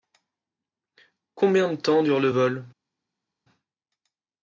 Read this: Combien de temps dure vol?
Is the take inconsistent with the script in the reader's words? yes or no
yes